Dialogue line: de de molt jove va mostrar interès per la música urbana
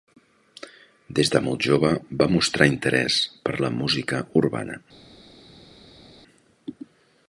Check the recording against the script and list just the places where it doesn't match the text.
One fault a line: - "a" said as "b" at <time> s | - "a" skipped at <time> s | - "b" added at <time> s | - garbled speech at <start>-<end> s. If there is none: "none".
- "de" said as "des" at 1.2 s